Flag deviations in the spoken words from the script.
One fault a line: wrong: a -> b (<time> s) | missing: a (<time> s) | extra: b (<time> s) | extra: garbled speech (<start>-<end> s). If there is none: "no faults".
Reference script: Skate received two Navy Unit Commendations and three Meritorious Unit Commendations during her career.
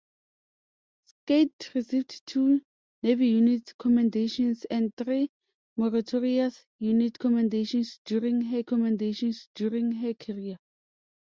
extra: Commendations during her (8.7 s)